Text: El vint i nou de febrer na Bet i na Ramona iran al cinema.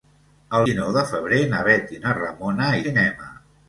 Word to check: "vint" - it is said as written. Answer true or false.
false